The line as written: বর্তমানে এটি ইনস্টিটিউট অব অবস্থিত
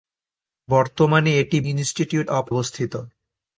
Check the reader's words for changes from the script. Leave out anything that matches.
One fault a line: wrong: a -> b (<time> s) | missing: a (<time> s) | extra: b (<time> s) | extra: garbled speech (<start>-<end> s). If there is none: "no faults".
no faults